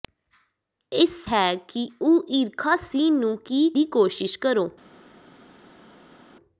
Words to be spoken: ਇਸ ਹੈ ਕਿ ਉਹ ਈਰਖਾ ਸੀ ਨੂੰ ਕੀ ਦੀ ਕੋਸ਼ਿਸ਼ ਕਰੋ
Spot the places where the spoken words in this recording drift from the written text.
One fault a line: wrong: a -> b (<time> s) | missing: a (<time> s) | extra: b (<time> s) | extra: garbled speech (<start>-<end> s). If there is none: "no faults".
no faults